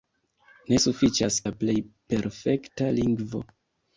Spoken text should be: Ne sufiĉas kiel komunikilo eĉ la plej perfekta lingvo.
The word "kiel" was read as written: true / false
false